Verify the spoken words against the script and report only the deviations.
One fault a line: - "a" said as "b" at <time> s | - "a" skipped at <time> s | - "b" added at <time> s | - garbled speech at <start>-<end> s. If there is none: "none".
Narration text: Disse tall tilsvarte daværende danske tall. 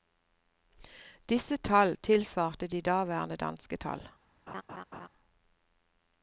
- "de" added at 2.7 s